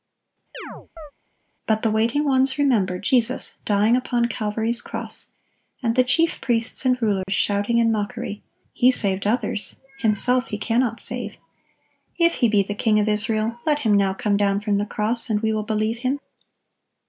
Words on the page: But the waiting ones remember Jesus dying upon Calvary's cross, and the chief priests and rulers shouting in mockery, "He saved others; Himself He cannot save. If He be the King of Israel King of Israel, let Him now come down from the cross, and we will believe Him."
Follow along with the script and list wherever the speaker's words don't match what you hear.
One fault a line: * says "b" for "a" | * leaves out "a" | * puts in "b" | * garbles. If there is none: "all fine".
* leaves out "King of Israel"